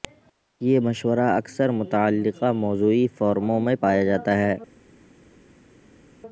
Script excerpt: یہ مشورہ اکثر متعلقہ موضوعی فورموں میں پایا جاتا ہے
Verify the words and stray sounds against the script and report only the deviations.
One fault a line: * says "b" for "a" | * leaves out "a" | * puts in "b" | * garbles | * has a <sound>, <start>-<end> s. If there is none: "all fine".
all fine